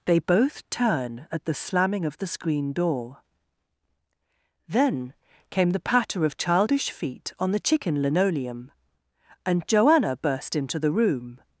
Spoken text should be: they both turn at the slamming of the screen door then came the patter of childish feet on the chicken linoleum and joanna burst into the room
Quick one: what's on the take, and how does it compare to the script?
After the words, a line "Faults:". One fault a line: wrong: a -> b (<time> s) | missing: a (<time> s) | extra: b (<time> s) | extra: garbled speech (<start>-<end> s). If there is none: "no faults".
they both turn at the slamming of the screen door then came the patter of childish feet on the chicken linoleum and joanna burst into the room
Faults:
no faults